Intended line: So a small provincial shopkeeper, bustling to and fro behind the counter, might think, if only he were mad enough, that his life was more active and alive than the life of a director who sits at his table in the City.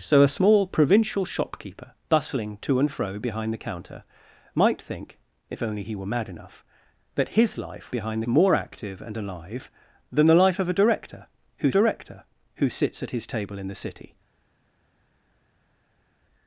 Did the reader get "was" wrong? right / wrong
wrong